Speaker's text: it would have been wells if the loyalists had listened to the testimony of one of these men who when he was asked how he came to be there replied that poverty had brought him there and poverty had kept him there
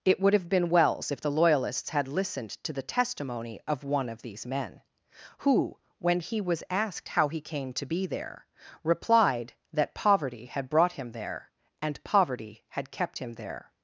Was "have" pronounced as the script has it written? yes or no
yes